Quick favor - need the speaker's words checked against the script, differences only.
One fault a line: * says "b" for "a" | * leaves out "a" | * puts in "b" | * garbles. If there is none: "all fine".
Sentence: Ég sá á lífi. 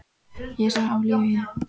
all fine